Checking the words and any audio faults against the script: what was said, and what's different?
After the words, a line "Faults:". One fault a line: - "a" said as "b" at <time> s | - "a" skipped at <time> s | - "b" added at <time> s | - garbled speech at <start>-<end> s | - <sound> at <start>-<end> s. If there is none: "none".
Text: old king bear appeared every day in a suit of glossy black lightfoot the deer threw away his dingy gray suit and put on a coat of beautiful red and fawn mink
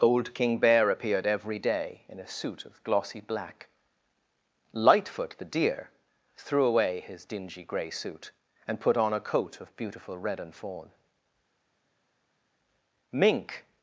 old king bear appeared every day in a suit of glossy black lightfoot the deer threw away his dingy gray suit and put on a coat of beautiful red and fawn mink
Faults:
none